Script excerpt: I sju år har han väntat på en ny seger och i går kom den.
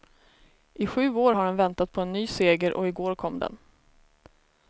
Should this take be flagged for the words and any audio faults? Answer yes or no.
no